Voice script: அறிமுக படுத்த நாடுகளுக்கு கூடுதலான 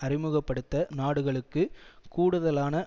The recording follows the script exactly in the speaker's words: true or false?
true